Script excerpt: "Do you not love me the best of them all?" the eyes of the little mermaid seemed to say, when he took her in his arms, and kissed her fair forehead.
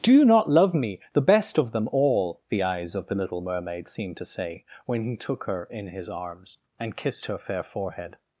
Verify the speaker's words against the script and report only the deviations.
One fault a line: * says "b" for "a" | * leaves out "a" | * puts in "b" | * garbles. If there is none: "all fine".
all fine